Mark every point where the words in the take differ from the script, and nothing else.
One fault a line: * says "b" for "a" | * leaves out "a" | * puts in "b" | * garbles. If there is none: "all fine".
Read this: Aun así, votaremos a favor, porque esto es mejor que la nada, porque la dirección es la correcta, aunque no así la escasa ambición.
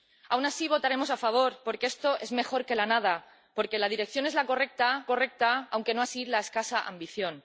* puts in "correcta"